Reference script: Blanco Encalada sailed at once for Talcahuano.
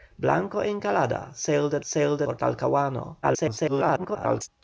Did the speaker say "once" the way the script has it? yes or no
no